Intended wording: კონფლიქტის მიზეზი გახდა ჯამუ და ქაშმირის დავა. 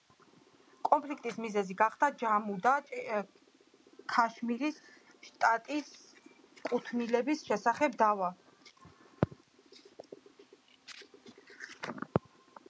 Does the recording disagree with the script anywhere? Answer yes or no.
yes